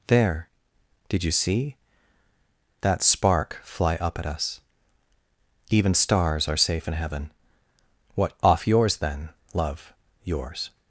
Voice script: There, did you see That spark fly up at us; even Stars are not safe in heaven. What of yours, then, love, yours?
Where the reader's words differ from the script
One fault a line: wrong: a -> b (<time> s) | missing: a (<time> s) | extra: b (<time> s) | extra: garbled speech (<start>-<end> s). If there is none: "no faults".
missing: not (6.6 s)
wrong: of -> off (8.4 s)